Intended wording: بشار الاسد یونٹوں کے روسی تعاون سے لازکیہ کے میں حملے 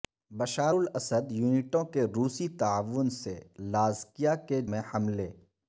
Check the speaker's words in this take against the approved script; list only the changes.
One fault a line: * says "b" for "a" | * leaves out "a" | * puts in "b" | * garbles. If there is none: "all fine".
all fine